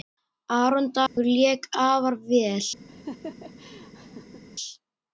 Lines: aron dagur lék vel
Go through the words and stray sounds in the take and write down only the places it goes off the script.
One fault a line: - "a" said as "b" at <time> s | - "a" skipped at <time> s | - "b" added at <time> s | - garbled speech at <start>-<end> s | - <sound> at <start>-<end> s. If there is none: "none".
- dropout at 1.1-1.2 s
- "afar" added at 1.7 s
- laugh at 2.9-4.4 s